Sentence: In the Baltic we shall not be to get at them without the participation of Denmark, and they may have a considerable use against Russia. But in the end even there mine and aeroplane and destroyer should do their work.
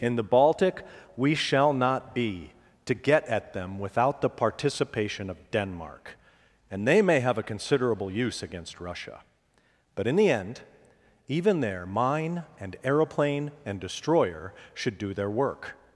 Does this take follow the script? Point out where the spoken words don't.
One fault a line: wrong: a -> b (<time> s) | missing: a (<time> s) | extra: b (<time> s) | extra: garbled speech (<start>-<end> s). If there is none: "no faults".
no faults